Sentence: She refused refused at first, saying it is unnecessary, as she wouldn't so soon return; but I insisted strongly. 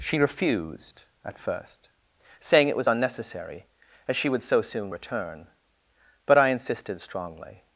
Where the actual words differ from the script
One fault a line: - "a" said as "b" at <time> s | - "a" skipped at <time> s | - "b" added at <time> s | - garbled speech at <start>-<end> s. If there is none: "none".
- "refused" skipped at 1.0 s
- "is" said as "was" at 2.8 s
- "wouldn't" said as "would" at 4.3 s